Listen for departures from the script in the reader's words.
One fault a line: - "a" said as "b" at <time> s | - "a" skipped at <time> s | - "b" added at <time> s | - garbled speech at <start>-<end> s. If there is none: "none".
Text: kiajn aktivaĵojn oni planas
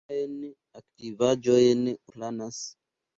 - "oni" skipped at 1.9 s